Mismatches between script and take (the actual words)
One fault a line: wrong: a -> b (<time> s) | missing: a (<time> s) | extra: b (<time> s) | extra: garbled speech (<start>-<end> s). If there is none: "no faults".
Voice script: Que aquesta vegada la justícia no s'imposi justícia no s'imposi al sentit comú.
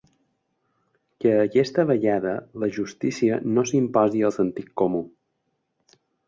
missing: justícia no s'imposi (4.3 s)